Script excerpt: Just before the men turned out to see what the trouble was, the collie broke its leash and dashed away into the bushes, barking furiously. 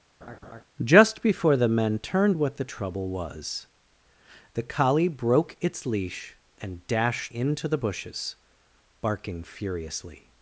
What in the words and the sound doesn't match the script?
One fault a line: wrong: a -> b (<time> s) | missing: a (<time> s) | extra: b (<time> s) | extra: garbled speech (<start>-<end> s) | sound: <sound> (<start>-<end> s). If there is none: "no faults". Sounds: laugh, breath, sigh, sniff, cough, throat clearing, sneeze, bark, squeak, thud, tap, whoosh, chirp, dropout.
sound: laugh (0.2-0.6 s)
missing: out to see (2.4 s)
missing: away (7.3 s)